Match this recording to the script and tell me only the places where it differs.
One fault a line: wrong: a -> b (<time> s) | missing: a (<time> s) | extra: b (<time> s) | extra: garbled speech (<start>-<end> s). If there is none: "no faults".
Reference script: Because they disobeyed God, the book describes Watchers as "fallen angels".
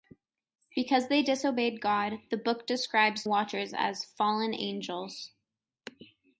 no faults